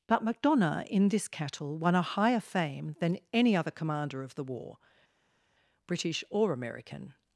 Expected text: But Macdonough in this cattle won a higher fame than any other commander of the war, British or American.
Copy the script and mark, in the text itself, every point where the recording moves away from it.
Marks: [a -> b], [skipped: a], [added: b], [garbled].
But Macdonough in this cattle won a higher fame than any other commander of the war, British or American.